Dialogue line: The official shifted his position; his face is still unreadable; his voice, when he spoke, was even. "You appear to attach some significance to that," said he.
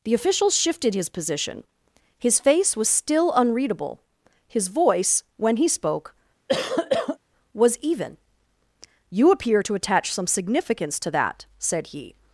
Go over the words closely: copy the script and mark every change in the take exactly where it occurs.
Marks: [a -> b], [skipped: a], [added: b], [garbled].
The official shifted his position; his face [is -> was] still unreadable; his voice, when he spoke, was even. "You appear to attach some significance to that," said he.